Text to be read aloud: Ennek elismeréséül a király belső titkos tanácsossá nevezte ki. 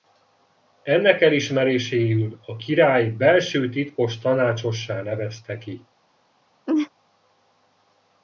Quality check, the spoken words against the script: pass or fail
pass